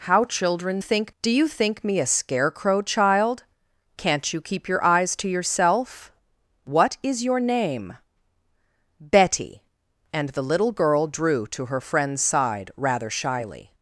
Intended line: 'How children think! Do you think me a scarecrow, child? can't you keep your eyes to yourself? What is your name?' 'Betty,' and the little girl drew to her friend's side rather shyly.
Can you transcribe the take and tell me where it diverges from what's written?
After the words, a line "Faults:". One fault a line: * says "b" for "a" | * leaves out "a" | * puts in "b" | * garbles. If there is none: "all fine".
'How children think! Do you think me a scarecrow, child? can't you keep your eyes to yourself? What is your name?' 'Betty,' and the little girl drew to her friend's side rather shyly.
Faults:
all fine